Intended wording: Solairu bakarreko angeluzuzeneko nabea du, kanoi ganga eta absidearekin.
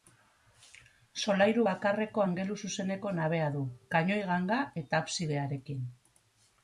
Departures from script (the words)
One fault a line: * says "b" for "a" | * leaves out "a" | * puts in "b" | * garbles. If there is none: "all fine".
all fine